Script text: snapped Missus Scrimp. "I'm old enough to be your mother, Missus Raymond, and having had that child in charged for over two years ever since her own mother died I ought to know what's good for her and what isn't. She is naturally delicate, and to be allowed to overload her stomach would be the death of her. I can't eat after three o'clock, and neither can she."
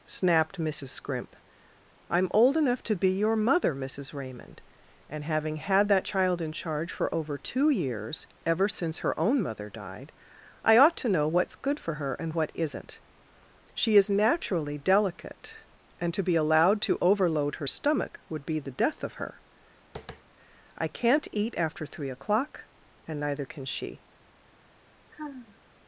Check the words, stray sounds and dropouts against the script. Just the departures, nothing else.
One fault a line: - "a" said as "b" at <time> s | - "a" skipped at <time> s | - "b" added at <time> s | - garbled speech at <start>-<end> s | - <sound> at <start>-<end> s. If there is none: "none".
- "charged" said as "charge" at 6.5 s
- tap at 20.0-20.2 s
- sigh at 25.1-25.6 s